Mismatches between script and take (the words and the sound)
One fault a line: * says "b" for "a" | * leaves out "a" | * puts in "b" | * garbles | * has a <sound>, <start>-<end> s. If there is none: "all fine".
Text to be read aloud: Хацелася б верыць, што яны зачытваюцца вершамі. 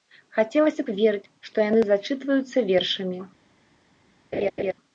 * has a laugh, 4.3-4.7 s